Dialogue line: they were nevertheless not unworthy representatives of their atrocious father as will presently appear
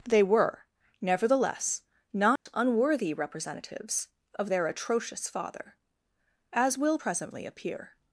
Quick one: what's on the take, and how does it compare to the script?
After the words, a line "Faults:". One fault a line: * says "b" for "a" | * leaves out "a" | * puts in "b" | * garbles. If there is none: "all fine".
they were nevertheless not unworthy representatives of their atrocious father as will presently appear
Faults:
all fine